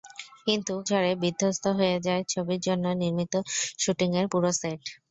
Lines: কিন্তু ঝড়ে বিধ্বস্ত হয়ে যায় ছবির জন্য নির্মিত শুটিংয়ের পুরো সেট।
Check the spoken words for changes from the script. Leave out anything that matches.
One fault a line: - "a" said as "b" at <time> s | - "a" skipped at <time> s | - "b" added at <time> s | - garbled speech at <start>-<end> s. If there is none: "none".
none